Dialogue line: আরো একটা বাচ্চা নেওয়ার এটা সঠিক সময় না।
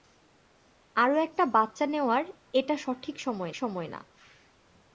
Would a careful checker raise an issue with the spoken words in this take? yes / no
yes